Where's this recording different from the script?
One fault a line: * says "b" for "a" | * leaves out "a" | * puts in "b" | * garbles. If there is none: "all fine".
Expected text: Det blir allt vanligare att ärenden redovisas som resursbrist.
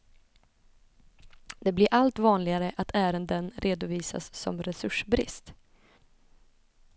all fine